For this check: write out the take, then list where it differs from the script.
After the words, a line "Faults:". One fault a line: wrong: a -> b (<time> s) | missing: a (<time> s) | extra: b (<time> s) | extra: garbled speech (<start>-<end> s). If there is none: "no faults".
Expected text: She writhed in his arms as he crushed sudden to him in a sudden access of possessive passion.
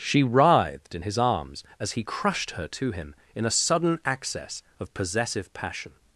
She writhed in his arms as he crushed her to him in a sudden access of possessive passion.
Faults:
wrong: sudden -> her (2.5 s)